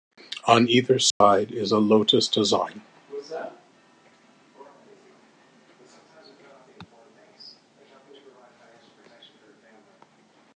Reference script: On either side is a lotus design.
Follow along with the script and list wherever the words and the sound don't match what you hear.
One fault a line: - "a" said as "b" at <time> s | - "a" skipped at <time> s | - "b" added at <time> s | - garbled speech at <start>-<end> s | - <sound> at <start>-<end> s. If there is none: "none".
- dropout at 1.1-1.2 s